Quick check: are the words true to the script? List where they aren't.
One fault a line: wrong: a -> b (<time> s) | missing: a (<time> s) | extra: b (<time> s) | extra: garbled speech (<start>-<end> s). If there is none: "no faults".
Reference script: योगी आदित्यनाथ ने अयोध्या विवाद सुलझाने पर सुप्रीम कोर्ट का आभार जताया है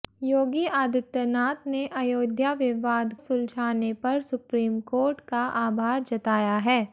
no faults